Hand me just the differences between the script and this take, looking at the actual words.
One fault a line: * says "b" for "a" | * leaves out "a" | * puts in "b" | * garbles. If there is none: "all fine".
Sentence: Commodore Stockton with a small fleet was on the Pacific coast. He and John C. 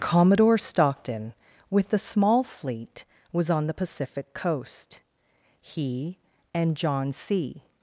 all fine